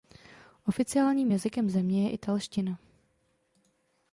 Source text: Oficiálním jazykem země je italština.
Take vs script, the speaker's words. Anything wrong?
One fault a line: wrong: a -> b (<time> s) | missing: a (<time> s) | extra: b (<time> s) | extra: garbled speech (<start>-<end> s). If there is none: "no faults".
no faults